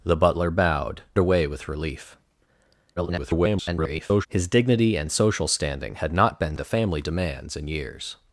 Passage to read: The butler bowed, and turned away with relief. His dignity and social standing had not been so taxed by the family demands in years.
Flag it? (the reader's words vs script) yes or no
yes